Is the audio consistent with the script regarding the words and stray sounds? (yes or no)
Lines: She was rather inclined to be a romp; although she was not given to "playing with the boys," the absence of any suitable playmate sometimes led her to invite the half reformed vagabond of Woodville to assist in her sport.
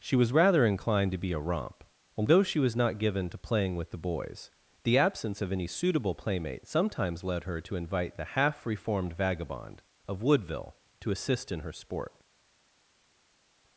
yes